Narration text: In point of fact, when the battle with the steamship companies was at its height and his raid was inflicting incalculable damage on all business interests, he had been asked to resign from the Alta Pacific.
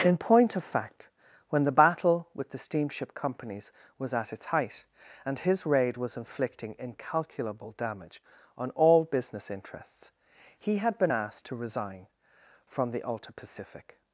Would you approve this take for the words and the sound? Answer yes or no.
yes